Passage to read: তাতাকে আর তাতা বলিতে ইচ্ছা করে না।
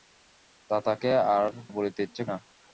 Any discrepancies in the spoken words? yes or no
yes